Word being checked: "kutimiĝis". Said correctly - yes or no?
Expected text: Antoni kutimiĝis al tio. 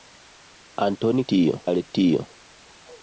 no